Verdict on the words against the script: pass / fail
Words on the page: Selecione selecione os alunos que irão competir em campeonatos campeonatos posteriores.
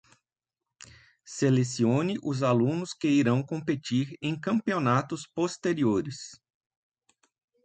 fail